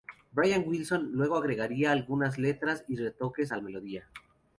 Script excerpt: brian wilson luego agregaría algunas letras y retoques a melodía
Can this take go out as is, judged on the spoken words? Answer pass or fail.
pass